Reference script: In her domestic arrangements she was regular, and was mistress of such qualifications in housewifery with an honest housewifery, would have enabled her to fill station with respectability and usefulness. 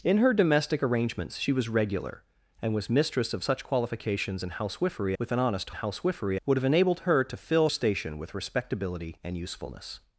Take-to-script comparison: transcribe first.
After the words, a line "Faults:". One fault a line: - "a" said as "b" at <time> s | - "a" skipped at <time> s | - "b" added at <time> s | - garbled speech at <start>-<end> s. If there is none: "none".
In her domestic arrangements she was regular, and was mistress of such qualifications in housewifery with an honest housewifery, would have enabled her to fill station with respectability and usefulness.
Faults:
none